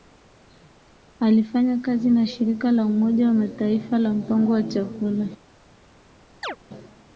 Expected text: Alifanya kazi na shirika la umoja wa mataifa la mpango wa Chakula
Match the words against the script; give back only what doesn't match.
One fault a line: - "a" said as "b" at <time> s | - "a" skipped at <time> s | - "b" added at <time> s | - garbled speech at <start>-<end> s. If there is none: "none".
none